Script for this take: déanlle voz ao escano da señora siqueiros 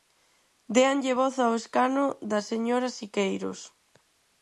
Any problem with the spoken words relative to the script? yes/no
no